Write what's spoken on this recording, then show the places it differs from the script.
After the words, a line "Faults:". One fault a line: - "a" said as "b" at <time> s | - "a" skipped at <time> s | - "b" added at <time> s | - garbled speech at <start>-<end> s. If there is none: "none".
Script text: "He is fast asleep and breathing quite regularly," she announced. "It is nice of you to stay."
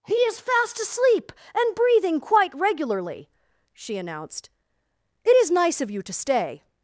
"He is fast asleep and breathing quite regularly," she announced. "It is nice of you to stay."
Faults:
none